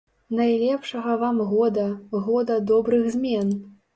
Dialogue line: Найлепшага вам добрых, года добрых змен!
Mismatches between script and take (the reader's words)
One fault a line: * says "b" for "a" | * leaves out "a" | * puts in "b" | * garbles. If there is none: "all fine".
* says "года" for "добрых"